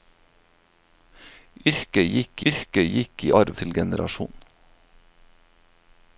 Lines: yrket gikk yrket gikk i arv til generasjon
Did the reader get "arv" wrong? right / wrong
right